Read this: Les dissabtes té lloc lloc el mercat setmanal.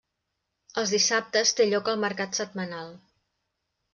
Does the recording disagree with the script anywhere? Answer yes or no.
yes